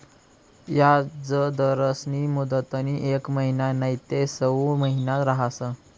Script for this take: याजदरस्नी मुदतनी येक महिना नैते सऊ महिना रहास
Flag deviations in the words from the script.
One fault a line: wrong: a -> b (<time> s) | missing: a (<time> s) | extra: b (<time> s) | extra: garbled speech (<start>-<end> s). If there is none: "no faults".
no faults